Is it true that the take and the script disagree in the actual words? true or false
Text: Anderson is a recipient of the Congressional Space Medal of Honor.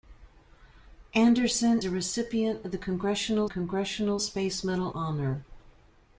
true